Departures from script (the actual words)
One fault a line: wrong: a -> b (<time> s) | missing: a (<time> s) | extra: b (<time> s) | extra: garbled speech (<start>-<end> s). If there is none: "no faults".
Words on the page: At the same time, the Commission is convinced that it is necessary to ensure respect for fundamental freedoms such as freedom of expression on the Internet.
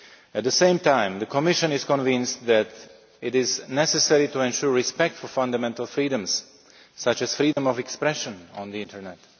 no faults